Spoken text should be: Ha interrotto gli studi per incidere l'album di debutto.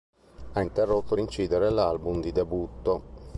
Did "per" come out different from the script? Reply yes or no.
yes